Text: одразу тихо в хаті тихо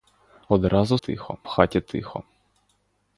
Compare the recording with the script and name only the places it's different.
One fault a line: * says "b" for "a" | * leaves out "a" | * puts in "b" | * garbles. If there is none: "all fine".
all fine